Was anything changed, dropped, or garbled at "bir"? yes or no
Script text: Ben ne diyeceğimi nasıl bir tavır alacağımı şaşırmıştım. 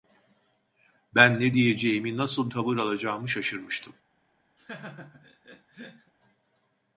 yes